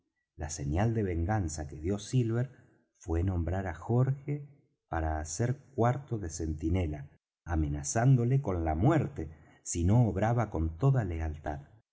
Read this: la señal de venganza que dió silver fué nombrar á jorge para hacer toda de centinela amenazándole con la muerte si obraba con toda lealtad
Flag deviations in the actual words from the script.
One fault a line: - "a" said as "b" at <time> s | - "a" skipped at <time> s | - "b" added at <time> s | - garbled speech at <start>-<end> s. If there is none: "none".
- "toda" said as "cuarto" at 5.8 s
- "no" added at 9.8 s